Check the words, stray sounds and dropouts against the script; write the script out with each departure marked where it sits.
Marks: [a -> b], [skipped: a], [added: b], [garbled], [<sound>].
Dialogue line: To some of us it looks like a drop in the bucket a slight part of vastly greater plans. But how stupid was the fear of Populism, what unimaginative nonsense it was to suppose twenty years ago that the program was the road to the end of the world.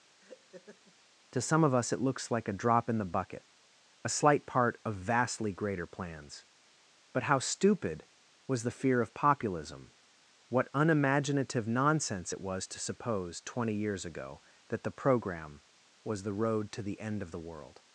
[laugh] To some of us it looks like a drop in the bucket a slight part of vastly greater plans. But how stupid was the fear of Populism, what unimaginative nonsense it was to suppose twenty years ago that the program was the road to the end of the world.